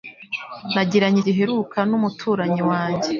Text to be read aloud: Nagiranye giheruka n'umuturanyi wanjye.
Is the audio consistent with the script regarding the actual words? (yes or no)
yes